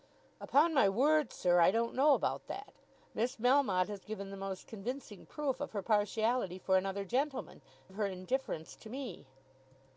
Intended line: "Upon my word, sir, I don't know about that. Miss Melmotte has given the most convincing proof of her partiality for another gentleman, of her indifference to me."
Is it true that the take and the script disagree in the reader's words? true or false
false